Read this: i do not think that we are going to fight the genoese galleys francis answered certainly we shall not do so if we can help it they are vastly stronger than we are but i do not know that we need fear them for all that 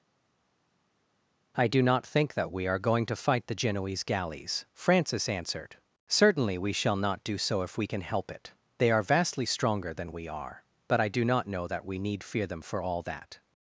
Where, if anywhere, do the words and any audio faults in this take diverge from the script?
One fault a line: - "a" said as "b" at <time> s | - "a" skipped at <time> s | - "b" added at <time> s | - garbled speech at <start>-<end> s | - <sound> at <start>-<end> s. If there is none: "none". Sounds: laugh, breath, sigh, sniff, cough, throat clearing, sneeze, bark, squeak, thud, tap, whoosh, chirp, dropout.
none